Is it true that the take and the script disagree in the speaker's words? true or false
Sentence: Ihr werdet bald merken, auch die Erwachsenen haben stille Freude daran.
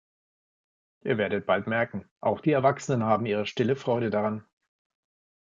true